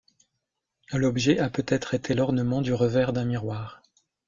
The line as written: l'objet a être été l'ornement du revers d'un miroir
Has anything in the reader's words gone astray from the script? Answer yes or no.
yes